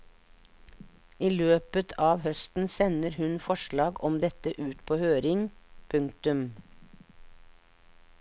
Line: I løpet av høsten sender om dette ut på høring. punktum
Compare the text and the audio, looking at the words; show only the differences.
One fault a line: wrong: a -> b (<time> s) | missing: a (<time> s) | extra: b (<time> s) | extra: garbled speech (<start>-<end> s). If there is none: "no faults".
extra: hun forslag (3.2 s)